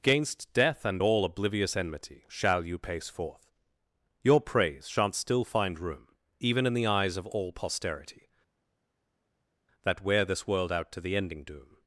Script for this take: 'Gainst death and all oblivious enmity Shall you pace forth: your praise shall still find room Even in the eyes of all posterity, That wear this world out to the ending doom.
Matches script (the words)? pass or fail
fail